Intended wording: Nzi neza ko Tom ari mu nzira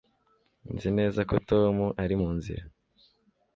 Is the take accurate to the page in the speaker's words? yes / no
yes